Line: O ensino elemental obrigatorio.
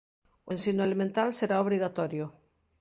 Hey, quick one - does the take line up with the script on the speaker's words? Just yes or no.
no